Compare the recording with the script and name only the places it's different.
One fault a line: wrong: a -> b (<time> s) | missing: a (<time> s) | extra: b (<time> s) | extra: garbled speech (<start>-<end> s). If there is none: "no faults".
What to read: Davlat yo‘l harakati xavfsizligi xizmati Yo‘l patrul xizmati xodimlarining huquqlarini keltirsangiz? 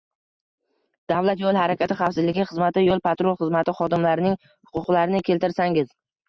no faults